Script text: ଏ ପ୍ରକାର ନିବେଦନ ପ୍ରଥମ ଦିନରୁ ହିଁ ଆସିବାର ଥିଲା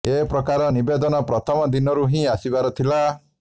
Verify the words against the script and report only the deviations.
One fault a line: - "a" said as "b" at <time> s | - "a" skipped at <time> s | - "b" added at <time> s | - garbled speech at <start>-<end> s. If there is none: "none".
none